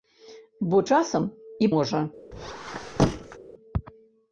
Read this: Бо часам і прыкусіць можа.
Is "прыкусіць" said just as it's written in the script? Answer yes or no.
no